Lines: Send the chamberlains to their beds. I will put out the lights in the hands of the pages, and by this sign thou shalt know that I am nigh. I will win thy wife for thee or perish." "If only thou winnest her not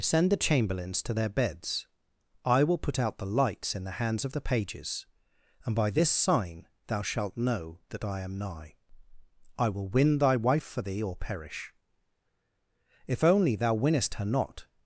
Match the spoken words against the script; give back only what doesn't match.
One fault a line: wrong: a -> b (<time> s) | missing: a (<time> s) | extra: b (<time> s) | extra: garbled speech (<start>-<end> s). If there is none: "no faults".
no faults